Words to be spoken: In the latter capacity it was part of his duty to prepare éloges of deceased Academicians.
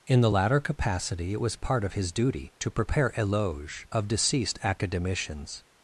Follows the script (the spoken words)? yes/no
yes